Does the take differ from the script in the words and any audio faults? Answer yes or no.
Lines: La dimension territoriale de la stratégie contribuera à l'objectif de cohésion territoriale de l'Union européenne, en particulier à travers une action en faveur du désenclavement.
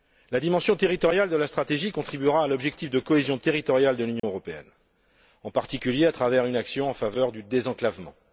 yes